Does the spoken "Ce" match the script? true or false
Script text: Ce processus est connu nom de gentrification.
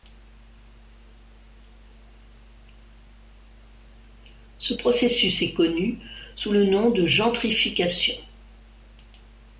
true